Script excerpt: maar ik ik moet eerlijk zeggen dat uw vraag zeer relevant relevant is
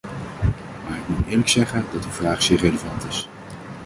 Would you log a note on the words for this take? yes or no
yes